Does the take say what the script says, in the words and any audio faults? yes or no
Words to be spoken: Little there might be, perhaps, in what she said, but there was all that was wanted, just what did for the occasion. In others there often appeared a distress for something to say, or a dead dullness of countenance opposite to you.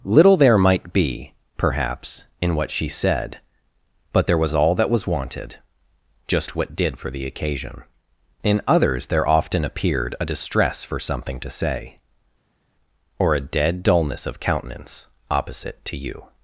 yes